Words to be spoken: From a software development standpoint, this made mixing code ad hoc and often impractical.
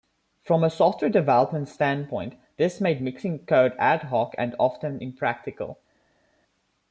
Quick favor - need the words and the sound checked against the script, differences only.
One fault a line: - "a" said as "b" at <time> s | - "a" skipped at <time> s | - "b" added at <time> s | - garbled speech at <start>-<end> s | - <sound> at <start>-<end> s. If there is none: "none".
none